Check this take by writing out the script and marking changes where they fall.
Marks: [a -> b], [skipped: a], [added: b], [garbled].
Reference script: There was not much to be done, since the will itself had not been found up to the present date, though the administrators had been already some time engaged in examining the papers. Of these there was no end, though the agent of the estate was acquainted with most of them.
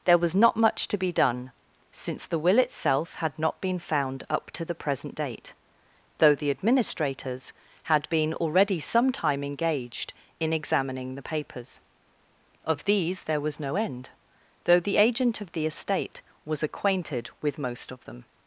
There was not much to be done, since the will itself had not been found up to the present date, though the administrators had been already some time engaged in examining the papers. Of these there was no end, though the agent of the estate was acquainted with most of them.